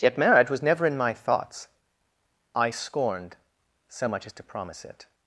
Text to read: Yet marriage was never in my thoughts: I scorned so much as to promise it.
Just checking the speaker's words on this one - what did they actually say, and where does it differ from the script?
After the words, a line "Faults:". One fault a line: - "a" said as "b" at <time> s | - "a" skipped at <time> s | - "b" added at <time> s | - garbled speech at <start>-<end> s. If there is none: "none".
Yet marriage was never in my thoughts: I scorned so much as to promise it.
Faults:
none